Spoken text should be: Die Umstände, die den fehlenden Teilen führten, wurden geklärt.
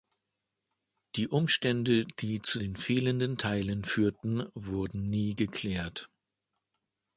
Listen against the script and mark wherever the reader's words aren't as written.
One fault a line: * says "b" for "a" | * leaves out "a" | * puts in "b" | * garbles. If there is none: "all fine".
* puts in "zu"
* puts in "nie"